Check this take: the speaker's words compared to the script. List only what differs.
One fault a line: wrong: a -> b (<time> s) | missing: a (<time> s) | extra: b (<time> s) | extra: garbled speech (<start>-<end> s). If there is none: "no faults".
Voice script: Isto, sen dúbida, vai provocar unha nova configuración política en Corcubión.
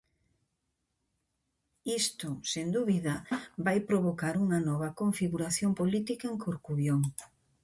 no faults